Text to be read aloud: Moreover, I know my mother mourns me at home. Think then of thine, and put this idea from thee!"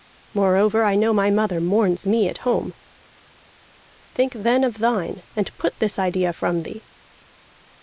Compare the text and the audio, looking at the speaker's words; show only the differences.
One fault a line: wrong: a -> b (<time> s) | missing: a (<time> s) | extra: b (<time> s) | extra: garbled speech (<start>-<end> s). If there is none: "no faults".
no faults